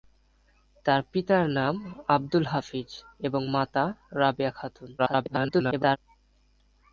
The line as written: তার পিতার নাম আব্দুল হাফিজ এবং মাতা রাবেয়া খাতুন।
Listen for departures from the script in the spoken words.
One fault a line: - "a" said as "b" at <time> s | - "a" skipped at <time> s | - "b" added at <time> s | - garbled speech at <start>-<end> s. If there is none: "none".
- garbled speech at 5.0-6.0 s